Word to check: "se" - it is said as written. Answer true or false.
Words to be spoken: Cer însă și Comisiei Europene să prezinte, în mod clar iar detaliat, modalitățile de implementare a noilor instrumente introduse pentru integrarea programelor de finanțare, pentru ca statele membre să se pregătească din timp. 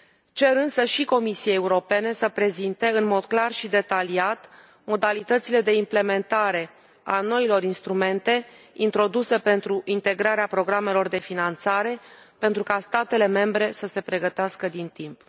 true